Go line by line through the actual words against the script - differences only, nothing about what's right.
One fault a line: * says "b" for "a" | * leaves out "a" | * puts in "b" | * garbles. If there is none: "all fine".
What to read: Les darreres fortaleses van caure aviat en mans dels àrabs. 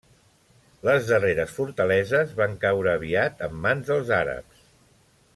all fine